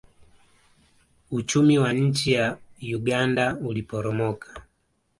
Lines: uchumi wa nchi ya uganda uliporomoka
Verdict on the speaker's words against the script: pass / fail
pass